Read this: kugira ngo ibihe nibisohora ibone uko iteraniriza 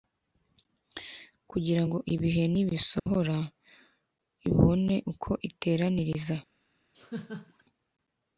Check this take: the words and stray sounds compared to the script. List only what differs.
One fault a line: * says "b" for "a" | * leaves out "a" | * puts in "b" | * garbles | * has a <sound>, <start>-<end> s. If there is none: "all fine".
* has a dropout, 3.0-3.1 s
* has a laugh, 6.9-7.6 s